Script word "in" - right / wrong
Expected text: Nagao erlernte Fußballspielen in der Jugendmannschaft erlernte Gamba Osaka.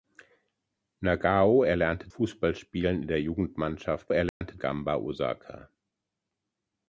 right